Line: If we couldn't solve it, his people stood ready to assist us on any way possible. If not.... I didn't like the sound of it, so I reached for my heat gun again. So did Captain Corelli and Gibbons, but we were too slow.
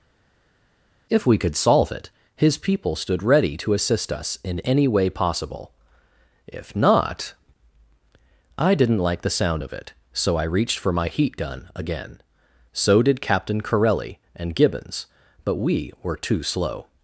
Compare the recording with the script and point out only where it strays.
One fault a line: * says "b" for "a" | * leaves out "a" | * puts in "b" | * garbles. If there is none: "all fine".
* says "could" for "couldn't"
* says "in" for "on"